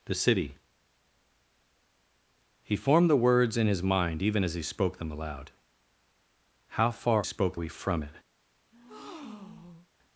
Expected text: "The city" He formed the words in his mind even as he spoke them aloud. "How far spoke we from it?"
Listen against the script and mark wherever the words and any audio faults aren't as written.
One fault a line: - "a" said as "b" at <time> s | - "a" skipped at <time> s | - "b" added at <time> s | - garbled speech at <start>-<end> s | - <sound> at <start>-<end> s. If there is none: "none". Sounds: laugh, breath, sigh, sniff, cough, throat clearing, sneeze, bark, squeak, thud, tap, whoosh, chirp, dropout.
- breath at 8.7-9.9 s